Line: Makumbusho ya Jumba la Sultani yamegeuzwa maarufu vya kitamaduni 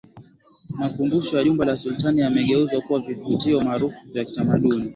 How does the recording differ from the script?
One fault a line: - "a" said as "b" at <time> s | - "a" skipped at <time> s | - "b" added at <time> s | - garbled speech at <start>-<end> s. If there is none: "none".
- "kuwa vivutio" added at 2.8 s